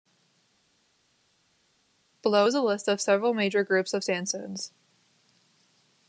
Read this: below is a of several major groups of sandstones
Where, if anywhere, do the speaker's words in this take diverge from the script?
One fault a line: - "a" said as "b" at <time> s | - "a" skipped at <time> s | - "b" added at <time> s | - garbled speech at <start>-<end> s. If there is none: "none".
- "list" added at 2.6 s